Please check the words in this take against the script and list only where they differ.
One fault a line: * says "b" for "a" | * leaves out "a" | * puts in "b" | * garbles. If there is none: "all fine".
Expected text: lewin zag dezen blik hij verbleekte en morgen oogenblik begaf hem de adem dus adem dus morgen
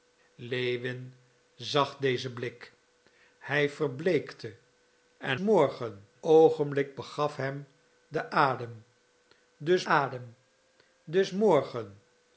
all fine